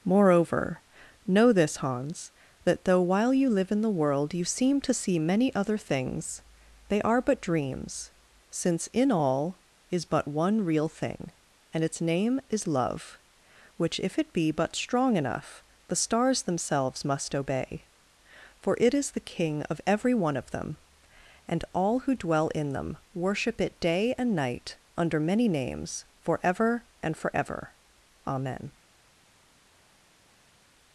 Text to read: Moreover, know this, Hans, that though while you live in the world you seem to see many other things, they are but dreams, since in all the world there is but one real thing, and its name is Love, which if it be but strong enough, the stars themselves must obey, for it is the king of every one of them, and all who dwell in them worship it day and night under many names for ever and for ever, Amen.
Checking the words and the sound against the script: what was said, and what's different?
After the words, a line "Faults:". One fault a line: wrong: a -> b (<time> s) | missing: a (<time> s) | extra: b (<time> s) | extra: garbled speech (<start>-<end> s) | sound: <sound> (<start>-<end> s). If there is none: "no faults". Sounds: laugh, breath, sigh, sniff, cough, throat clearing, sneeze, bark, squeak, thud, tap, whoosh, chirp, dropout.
Moreover, know this, Hans, that though while you live in the world you seem to see many other things, they are but dreams, since in all is but one real thing, and its name is Love, which if it be but strong enough, the stars themselves must obey, for it is the king of every one of them, and all who dwell in them worship it day and night under many names for ever and for ever, Amen.
Faults:
missing: the world there (9.6 s)